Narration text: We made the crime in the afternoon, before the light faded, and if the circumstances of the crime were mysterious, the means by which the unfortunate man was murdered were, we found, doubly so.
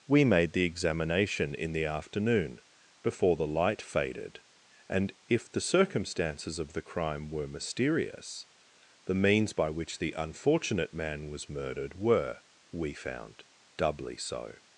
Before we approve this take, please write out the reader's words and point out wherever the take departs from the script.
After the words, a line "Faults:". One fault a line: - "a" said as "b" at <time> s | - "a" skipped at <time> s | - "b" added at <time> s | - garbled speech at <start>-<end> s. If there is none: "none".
We made the examination in the afternoon, before the light faded, and if the circumstances of the crime were mysterious, the means by which the unfortunate man was murdered were, we found, doubly so.
Faults:
- "crime" said as "examination" at 0.7 s